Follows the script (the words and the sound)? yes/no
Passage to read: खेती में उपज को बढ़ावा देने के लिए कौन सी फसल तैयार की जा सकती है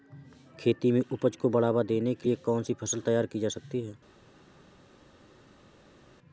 yes